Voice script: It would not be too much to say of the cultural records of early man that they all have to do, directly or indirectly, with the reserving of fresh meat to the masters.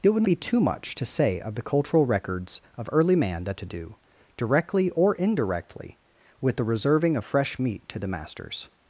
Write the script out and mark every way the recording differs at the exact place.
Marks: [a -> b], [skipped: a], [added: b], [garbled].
It would [skipped: not] be too much to say of the cultural records of early man that [skipped: they all have] to do, directly or indirectly, with the reserving of fresh meat to the masters.